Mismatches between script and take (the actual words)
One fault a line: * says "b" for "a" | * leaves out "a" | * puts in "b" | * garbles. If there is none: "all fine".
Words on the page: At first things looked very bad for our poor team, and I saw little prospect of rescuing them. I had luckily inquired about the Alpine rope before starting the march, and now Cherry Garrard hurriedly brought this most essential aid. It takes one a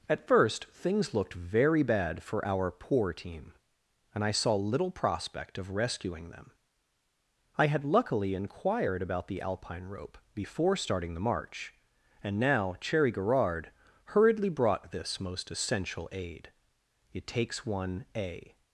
all fine